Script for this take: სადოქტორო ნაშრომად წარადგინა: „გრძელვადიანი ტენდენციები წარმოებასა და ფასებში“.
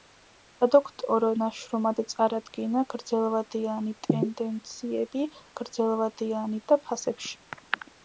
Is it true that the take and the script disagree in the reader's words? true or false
true